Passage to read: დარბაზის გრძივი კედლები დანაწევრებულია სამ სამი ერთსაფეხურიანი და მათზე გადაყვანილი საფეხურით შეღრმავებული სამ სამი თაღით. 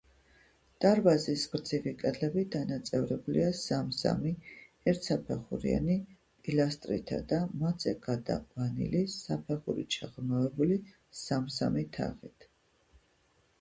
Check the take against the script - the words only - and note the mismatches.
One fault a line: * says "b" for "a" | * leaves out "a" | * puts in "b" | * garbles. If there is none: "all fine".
* puts in "პილასტრითა"